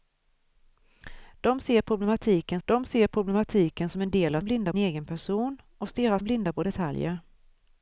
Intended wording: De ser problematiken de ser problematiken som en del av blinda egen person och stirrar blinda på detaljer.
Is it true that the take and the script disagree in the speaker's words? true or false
false